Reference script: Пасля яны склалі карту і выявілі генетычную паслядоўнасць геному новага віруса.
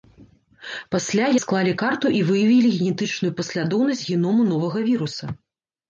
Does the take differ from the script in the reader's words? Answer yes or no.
yes